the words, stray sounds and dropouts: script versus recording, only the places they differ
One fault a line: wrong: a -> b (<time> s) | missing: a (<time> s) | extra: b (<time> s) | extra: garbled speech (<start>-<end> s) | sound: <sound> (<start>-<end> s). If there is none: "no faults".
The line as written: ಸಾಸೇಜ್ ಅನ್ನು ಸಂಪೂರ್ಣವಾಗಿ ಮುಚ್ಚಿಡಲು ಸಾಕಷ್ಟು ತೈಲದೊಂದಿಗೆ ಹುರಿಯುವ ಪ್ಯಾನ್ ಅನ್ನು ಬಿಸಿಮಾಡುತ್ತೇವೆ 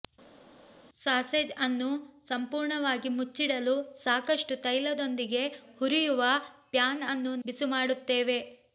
no faults